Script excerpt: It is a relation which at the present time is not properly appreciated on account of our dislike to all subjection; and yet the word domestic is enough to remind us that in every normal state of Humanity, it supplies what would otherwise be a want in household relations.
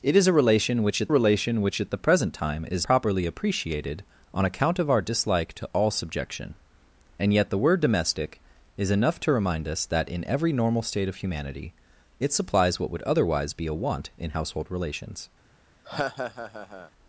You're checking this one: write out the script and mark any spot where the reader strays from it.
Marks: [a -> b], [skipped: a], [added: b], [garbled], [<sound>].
It is a relation which at [added: relation which at] the present time is [skipped: not] properly appreciated on account of our dislike to all subjection; and yet the word domestic is enough to remind us that in every normal state of Humanity, it supplies what would otherwise be a want in household relations. [laugh]